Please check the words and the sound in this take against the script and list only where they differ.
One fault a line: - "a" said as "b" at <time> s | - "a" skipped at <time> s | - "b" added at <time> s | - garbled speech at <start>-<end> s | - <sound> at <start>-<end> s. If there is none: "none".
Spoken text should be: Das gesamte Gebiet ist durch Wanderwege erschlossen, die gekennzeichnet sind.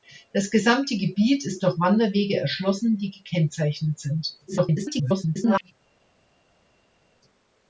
- garbled speech at 4.5-5.7 s